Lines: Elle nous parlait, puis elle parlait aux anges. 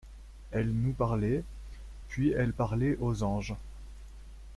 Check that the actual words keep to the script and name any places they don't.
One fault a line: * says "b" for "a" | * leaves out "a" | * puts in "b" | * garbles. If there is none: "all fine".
all fine